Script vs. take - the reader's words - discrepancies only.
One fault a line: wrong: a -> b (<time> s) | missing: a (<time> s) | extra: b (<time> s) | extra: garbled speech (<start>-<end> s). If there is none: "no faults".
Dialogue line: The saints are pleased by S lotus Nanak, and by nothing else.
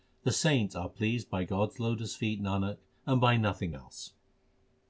extra: God (1.4 s)
extra: feet (2.1 s)